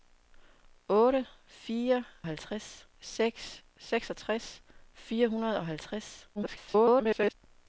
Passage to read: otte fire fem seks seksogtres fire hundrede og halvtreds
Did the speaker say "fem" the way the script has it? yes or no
no